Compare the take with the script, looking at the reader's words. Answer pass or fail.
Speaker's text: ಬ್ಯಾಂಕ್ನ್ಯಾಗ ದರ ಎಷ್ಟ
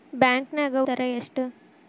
pass